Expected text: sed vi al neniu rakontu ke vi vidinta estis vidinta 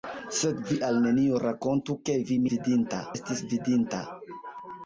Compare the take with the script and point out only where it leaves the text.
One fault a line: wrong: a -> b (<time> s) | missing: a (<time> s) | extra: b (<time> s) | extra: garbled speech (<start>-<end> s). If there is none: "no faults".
no faults